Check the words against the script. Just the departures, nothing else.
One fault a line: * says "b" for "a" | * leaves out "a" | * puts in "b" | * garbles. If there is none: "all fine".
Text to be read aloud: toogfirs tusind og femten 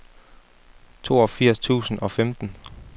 all fine